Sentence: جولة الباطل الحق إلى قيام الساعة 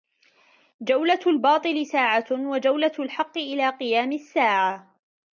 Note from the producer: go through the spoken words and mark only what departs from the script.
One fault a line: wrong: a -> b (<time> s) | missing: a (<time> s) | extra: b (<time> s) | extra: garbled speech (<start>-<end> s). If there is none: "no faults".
extra: ساعة وجولة (1.8 s)